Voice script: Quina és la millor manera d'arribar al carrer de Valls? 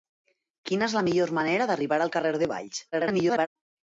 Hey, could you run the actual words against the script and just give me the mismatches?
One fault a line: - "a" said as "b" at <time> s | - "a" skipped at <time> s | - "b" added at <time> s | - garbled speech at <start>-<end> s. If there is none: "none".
- garbled speech at 2.9-3.5 s